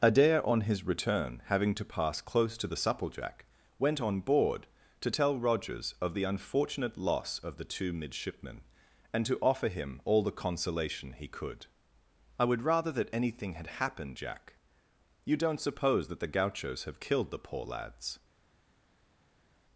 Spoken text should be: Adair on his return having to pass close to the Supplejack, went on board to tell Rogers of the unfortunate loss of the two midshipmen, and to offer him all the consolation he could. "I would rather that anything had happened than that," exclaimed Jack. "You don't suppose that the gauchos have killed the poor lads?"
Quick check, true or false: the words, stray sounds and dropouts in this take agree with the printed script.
false